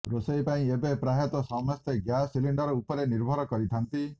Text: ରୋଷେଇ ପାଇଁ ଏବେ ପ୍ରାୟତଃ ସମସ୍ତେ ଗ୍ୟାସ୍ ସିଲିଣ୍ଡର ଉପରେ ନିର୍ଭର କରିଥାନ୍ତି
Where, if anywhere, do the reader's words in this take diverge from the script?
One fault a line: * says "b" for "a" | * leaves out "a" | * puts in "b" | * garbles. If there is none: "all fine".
all fine